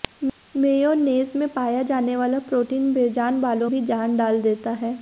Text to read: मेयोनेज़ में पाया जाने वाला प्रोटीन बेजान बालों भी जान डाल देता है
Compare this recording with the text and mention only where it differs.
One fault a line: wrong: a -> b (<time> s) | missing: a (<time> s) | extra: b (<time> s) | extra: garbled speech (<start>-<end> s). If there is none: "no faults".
no faults